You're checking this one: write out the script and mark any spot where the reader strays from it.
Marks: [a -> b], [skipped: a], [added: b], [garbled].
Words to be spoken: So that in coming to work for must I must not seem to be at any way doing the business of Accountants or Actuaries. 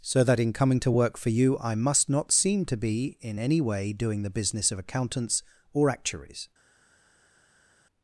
So that in coming to work for [must -> you] I must not seem to be [at -> in] any way doing the business of Accountants or Actuaries.